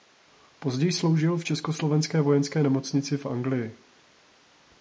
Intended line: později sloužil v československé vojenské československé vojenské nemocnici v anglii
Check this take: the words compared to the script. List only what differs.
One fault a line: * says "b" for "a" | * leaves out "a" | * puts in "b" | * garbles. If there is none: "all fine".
* leaves out "československé vojenské"